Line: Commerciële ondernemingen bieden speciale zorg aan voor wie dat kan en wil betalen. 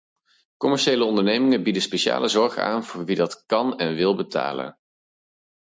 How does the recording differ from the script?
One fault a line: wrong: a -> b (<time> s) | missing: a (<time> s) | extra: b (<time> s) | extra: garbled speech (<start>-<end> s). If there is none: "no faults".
no faults